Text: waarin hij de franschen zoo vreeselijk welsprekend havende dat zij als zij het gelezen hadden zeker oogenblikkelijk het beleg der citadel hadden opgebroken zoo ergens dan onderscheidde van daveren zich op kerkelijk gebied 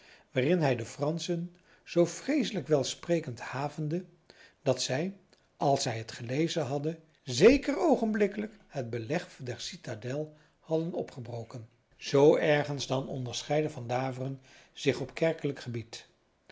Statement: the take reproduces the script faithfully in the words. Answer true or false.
true